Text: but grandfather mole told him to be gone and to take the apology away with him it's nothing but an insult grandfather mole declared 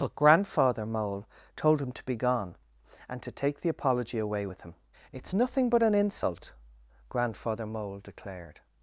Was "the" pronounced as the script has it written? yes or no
yes